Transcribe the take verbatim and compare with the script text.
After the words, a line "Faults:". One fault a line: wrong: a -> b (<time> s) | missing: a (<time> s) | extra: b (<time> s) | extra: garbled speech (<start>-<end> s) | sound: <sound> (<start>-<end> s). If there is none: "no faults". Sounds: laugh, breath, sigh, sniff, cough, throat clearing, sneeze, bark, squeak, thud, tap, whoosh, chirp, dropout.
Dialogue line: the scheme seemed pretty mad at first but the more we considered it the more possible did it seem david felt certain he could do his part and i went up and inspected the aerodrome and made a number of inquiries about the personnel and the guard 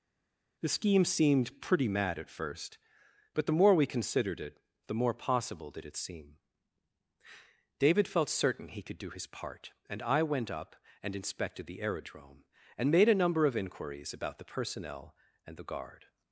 the scheme seemed pretty mad at first but the more we considered it the more possible did it seem david felt certain he could do his part and i went up and inspected the aerodrome and made a number of inquiries about the personnel and the guard
Faults:
no faults